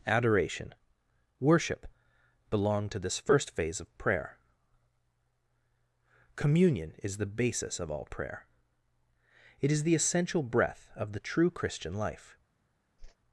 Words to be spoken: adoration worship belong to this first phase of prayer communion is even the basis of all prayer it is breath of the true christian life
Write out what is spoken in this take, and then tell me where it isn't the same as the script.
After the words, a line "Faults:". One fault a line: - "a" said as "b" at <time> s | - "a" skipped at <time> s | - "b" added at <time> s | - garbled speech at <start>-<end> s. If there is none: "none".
adoration worship belong to this first phase of prayer communion is the basis of all prayer it is the essential breath of the true christian life
Faults:
- "even" skipped at 7.2 s
- "the essential" added at 9.8 s